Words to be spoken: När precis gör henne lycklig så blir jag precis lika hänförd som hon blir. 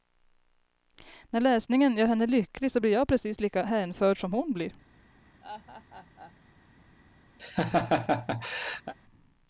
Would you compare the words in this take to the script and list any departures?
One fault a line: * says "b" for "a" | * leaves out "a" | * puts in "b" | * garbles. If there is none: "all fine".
* says "läsningen" for "precis"